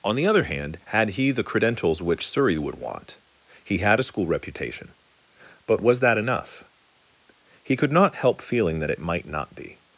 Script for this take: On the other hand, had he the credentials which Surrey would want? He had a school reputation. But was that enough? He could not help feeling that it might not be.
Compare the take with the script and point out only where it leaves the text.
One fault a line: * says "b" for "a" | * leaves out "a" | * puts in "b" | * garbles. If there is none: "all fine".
all fine